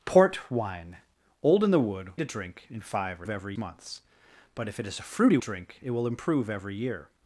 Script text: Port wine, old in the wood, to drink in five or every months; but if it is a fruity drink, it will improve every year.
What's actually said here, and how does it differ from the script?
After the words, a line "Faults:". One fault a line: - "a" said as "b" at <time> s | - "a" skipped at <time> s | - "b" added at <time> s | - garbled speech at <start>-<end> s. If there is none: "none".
Port wine, old in the wood, to drink in five or every months; but if it is a fruity drink, it will improve every year.
Faults:
none